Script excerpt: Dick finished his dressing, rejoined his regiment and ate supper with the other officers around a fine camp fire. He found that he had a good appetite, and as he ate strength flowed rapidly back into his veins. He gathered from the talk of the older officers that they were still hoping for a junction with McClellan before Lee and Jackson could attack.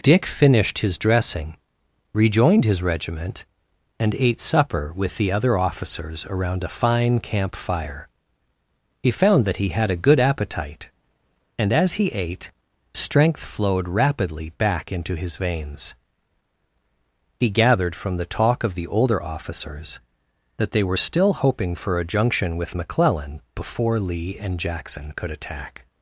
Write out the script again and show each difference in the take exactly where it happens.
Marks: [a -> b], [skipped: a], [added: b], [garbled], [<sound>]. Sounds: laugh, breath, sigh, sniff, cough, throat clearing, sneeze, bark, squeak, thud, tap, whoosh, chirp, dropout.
Dick finished his dressing, rejoined his regiment and ate supper with the other officers around a fine camp fire. He found that he had a good appetite, and as he ate strength flowed rapidly back into his veins. He gathered from the talk of the older officers that they were still hoping for a junction with McClellan before Lee and Jackson could attack.